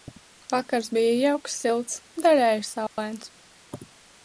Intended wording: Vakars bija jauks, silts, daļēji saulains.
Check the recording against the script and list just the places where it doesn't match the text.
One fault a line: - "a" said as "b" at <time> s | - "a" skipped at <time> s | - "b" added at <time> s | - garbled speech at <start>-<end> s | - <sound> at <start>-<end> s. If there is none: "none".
- dropout at 2.9-3.0 s